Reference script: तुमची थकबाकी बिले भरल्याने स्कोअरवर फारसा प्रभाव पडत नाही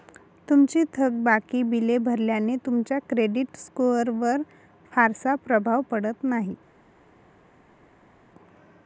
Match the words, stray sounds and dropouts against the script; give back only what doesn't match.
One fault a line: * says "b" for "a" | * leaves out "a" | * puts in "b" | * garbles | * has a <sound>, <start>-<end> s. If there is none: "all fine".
* puts in "तुमच्या क्रेडिट"